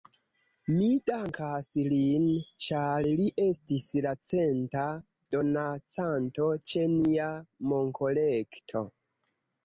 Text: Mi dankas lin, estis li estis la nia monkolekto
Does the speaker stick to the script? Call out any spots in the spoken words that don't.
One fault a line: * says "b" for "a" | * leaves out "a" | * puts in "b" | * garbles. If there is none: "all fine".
* says "ĉar" for "estis"
* puts in "centa donacanto ĉe"